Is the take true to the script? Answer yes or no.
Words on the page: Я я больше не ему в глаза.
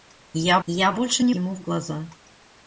yes